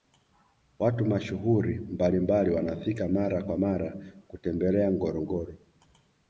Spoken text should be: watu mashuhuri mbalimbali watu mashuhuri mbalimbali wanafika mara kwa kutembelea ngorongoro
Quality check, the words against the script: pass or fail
fail